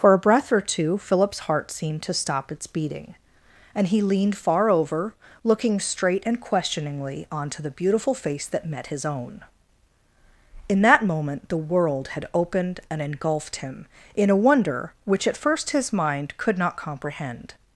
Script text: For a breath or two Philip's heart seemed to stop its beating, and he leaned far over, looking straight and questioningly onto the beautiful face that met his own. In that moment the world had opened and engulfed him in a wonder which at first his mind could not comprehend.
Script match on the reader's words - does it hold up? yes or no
yes